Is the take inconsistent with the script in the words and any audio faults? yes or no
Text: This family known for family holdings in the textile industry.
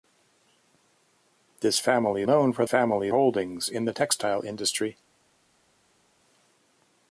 no